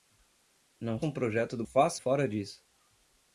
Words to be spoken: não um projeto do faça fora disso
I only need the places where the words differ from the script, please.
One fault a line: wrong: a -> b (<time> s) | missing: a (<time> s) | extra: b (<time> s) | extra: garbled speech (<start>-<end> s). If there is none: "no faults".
no faults